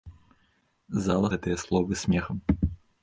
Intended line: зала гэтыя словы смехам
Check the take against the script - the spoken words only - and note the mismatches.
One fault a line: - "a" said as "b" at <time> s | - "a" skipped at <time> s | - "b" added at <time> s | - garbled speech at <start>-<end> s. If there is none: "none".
none